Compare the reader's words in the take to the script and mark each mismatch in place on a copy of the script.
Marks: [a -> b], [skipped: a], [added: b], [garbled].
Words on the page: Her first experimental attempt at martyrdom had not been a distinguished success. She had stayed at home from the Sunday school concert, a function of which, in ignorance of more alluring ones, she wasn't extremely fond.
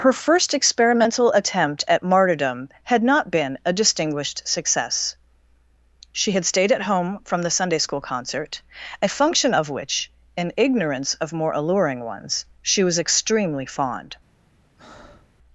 Her first experimental attempt at martyrdom had not been a distinguished success. She had stayed at home from the Sunday school concert, a function of which, in ignorance of more alluring ones, she [wasn't -> was] extremely fond.